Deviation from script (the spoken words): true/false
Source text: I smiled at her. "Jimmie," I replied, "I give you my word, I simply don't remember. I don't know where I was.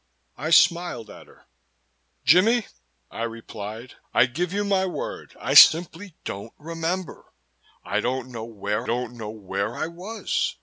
true